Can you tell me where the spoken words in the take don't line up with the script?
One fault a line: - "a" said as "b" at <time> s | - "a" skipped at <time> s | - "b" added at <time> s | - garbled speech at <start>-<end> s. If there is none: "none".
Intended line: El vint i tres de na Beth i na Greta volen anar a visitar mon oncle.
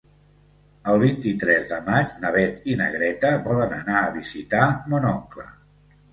- "maig" added at 1.9 s